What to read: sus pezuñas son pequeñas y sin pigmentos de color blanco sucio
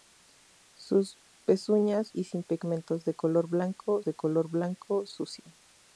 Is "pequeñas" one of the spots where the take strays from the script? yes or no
yes